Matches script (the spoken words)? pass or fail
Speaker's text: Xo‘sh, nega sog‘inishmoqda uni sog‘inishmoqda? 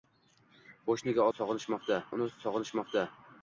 pass